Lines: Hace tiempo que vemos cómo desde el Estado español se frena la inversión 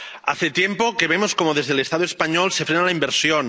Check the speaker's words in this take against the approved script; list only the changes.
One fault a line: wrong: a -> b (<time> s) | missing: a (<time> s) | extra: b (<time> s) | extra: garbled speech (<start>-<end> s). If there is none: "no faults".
no faults